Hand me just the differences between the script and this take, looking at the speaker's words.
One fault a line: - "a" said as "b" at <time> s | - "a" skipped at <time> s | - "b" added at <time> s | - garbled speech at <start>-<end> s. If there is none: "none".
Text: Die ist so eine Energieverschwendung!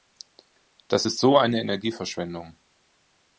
- "Die" said as "Das" at 0.9 s